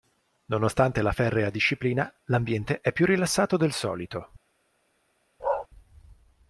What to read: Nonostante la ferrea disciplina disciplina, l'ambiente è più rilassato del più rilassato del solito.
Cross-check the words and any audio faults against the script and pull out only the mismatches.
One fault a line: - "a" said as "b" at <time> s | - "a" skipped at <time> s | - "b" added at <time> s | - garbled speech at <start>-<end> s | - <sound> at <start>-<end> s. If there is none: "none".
- "disciplina" skipped at 2.1 s
- "più rilassato del" skipped at 3.7 s
- bark at 5.4-5.7 s